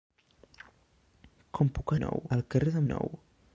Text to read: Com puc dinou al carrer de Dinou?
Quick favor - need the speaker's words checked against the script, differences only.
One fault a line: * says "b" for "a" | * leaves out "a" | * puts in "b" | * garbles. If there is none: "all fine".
all fine